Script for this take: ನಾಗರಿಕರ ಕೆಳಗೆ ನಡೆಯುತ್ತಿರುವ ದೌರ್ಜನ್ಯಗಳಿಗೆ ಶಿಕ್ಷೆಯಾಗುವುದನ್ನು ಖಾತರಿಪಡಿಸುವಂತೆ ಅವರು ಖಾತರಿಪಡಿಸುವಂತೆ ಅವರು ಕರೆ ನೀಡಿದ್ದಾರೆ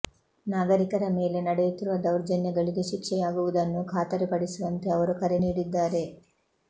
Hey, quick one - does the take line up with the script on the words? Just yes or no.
no